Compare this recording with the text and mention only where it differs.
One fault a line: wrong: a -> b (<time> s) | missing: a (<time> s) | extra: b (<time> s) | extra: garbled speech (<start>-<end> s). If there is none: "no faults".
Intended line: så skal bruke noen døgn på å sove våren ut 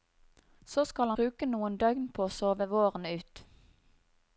no faults